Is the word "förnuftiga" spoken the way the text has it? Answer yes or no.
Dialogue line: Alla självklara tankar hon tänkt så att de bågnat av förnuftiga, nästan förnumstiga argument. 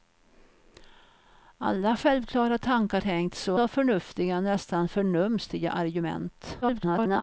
yes